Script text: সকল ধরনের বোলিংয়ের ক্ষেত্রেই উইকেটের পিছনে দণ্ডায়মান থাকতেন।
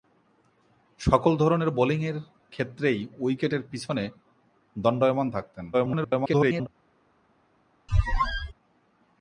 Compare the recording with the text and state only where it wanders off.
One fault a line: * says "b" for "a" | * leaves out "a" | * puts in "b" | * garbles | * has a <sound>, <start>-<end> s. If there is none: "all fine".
* garbles
* has a squeak, 7.9-8.5 s